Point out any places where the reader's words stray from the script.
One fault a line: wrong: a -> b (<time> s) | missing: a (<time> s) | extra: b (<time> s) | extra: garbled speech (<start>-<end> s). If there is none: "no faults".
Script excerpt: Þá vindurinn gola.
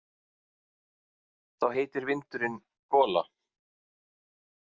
extra: heitir (1.8 s)